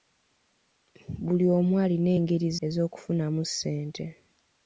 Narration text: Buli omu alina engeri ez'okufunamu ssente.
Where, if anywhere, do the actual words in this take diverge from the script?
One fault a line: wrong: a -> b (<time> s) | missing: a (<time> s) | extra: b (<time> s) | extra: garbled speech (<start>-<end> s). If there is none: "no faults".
no faults